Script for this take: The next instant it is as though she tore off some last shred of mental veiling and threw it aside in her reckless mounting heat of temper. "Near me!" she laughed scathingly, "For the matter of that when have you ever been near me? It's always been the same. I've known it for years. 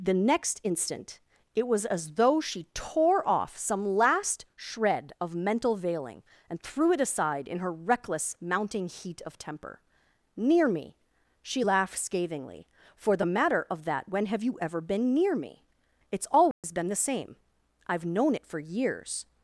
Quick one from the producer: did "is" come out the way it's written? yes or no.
no